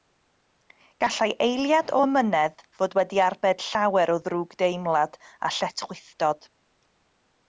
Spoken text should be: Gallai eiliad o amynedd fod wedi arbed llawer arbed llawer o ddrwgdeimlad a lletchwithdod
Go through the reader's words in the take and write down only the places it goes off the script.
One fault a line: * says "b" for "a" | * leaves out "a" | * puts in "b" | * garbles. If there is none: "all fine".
* leaves out "arbed llawer"